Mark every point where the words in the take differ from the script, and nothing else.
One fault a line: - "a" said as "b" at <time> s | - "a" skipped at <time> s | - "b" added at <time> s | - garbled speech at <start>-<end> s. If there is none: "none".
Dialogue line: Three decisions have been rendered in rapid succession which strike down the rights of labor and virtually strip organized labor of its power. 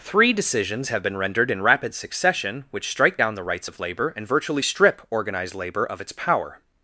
none